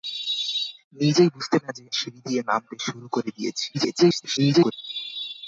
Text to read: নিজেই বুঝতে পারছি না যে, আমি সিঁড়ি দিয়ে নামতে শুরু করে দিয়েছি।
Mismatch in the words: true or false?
true